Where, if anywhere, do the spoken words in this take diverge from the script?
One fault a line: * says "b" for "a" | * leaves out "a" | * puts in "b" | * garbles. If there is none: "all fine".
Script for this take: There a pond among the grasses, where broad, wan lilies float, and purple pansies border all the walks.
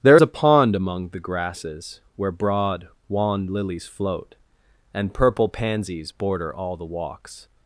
all fine